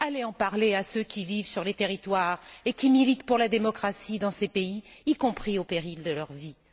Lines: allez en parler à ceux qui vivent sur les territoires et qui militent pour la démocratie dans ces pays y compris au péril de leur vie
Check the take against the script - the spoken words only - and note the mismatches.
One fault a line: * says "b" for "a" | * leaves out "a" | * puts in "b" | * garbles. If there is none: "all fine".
all fine